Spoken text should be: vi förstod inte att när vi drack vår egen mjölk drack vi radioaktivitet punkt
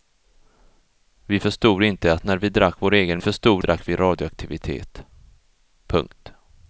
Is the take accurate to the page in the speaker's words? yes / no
no